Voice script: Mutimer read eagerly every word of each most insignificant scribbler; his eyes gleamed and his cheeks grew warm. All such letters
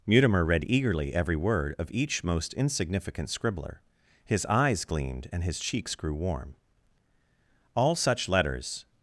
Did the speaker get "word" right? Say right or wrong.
right